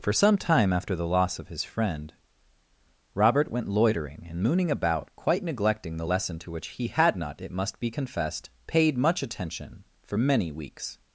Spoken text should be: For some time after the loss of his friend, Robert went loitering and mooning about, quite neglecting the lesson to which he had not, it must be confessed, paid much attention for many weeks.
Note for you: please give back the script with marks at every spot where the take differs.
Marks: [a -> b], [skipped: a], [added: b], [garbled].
For some time after the loss of his friend, Robert went loitering and mooning about, quite neglecting the lesson to which he had not, it must be confessed, paid much attention for many weeks.